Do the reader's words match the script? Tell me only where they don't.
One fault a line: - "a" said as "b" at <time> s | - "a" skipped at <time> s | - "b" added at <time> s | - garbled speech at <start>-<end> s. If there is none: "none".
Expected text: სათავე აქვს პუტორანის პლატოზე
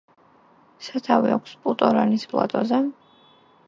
none